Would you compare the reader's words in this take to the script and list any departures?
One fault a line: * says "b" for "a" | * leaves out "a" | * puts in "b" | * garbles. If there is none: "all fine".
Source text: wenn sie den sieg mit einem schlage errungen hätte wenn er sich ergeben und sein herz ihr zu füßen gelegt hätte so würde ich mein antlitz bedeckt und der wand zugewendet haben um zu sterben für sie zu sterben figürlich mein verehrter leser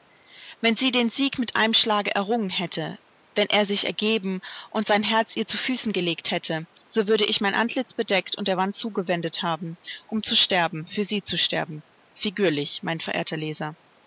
all fine